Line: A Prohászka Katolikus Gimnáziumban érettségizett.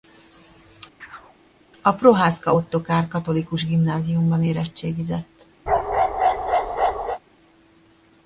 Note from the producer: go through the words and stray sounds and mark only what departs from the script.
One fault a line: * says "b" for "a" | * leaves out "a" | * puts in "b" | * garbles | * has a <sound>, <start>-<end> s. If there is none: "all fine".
* has a chirp, 1.0-1.4 s
* puts in "Ottokár"
* has a bark, 5.7-7.2 s